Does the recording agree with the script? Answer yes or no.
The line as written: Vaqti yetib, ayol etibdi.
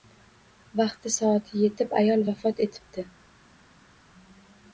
no